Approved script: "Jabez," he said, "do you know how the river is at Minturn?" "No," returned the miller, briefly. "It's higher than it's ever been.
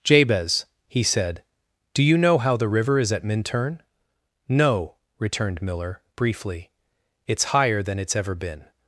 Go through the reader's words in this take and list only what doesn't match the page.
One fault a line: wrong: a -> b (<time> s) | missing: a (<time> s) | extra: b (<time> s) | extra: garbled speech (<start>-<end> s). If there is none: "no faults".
missing: the (5.6 s)